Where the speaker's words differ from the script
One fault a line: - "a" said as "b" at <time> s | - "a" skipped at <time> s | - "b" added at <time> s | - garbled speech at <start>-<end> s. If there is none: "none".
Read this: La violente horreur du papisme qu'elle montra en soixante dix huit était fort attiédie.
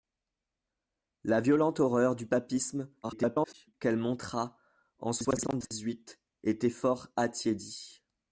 - garbled speech at 3.0-3.7 s